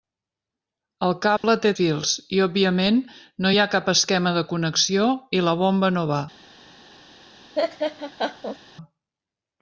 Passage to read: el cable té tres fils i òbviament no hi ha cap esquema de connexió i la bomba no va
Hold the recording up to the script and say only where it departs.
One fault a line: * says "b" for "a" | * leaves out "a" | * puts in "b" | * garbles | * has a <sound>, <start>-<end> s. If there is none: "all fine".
* has a dropout, 1.4-1.4 s
* leaves out "tres"
* has a laugh, 7.5-8.6 s